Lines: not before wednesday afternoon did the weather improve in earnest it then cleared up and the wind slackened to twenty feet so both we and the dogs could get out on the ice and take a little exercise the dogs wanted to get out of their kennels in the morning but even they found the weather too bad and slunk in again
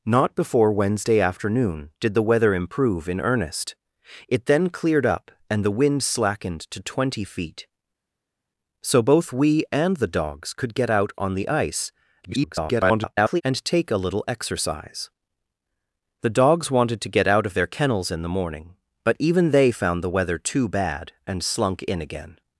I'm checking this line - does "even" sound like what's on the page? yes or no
yes